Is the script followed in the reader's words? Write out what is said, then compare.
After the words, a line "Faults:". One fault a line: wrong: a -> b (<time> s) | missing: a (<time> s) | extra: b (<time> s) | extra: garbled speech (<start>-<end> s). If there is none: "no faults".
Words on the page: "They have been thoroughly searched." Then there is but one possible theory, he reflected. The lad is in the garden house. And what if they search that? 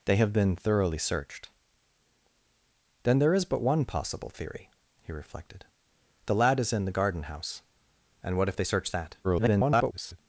"They have been thoroughly searched." Then there is but one possible theory, he reflected. The lad is in the garden house. And what if they search that? [garbled]
Faults:
extra: garbled speech (9.2-10.2 s)